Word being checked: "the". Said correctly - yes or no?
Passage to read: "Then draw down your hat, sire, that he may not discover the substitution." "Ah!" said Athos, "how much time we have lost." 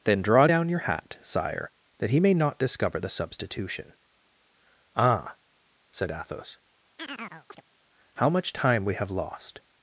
yes